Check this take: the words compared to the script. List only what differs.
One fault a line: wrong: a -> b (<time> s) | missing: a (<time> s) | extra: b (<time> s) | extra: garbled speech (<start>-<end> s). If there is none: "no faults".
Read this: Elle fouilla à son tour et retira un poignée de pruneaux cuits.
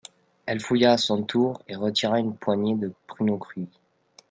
wrong: un -> une (2.2 s)